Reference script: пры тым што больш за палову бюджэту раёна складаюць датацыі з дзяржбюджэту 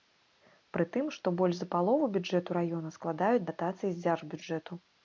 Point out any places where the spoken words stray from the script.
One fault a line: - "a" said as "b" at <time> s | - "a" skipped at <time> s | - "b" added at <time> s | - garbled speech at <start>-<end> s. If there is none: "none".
none